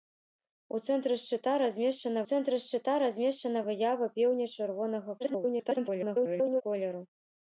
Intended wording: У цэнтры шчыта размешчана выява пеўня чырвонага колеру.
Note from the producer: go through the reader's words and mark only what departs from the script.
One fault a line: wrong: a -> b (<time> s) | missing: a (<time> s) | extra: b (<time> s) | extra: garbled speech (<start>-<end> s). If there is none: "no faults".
extra: цэнтры шчыта размешчана (2.3 s)
extra: garbled speech (5.2-6.6 s)